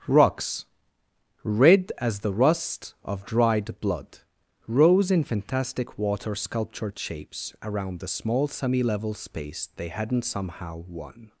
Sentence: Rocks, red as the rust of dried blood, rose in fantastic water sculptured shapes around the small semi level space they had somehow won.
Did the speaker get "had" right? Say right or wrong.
wrong